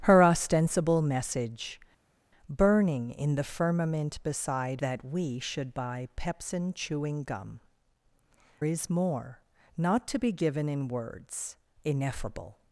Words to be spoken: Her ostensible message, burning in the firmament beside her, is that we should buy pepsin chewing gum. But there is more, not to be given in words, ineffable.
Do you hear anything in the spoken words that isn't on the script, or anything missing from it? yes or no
yes